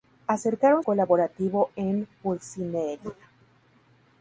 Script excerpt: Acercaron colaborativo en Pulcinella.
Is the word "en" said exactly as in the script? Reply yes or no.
yes